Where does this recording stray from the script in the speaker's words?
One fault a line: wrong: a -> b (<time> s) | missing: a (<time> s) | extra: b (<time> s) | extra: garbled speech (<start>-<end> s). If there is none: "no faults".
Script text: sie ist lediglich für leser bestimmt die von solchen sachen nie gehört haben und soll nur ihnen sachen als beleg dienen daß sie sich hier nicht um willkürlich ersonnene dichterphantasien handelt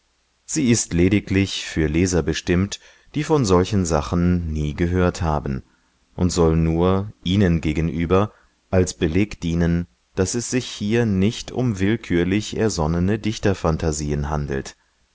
wrong: sachen -> gegenüber (7.6 s)
wrong: sie -> es (10.4 s)